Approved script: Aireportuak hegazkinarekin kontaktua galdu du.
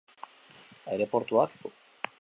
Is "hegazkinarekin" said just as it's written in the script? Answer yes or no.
no